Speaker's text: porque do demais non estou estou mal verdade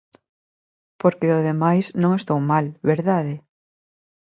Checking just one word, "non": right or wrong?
right